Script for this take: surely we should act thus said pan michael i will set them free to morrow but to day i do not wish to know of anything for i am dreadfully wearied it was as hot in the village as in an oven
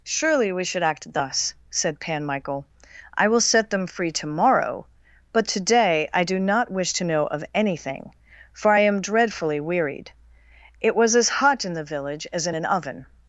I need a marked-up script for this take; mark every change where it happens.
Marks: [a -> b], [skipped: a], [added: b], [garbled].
surely we should act thus said pan michael i will set them free to morrow but to day i do not wish to know of anything for i am dreadfully wearied it was as hot in the village as in an oven